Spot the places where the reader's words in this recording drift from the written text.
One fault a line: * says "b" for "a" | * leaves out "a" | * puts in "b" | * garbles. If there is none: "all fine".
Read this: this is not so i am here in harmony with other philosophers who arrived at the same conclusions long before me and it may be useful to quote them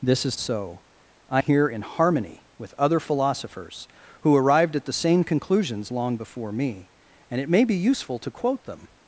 * leaves out "not"
* leaves out "am"